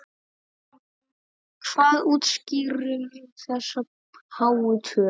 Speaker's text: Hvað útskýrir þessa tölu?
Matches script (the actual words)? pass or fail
fail